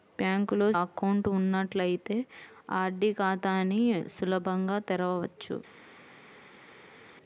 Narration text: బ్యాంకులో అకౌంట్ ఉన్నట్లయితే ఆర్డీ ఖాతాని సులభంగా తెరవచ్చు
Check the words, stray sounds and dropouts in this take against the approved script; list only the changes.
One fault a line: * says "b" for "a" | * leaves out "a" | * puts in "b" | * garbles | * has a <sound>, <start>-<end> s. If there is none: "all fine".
all fine